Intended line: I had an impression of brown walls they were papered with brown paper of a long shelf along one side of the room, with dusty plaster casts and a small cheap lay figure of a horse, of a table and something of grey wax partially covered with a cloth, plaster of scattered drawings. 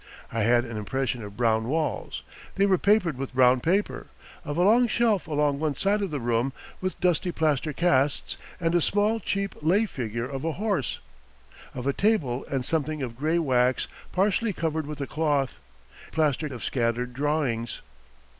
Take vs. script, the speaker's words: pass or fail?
pass